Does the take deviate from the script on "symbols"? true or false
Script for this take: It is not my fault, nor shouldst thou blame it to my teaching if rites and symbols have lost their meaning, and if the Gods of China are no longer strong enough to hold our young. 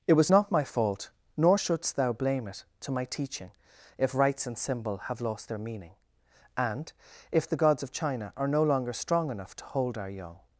true